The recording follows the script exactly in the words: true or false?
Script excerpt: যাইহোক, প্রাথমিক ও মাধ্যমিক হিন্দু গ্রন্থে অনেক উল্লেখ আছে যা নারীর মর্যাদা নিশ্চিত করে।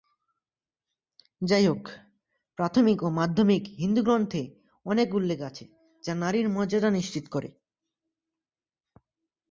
true